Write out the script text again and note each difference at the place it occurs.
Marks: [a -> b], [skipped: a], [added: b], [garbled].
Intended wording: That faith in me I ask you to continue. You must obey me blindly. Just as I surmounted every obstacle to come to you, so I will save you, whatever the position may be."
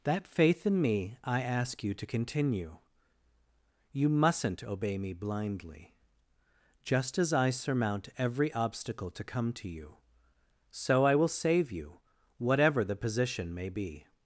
That faith in me I ask you to continue. You [must -> mustn't] obey me blindly. Just as I [surmounted -> surmount] every obstacle to come to you, so I will save you, whatever the position may be."